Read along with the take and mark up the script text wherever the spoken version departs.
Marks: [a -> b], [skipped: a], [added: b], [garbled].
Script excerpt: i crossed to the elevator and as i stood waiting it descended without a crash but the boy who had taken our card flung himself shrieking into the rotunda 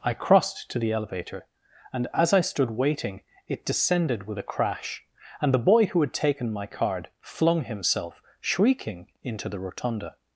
i crossed to the elevator and as i stood waiting it descended [without -> with] a crash [but -> and] the boy who had taken [our -> my] card flung himself shrieking into the rotunda